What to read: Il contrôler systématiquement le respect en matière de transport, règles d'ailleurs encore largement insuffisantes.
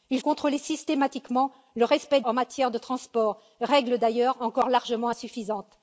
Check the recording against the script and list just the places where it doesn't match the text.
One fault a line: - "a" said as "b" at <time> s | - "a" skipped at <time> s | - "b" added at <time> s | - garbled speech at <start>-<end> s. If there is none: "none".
none